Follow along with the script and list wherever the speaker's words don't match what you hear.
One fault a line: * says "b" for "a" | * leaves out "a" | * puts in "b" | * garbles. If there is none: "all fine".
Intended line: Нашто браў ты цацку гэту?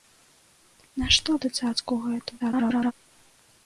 * leaves out "браў"
* garbles